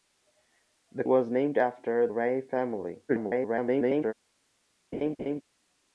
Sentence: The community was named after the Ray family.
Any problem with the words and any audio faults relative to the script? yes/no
yes